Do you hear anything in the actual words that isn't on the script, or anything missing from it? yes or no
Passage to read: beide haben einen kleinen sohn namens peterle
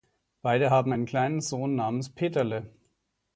no